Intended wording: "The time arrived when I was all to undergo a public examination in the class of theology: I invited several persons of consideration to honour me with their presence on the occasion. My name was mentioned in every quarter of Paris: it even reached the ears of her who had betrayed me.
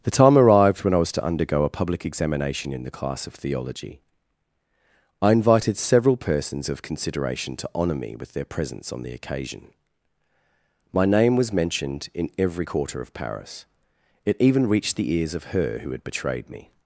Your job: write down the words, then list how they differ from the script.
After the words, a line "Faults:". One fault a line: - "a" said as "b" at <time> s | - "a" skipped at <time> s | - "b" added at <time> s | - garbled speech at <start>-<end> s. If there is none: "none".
"The time arrived when I was to undergo a public examination in the class of theology: I invited several persons of consideration to honour me with their presence on the occasion. My name was mentioned in every quarter of Paris: it even reached the ears of her who had betrayed me.
Faults:
- "all" skipped at 1.1 s